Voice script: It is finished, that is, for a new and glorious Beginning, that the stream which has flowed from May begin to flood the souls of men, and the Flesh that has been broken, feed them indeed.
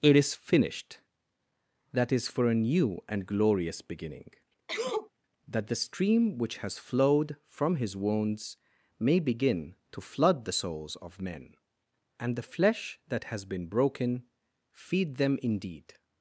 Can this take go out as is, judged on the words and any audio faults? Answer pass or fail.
fail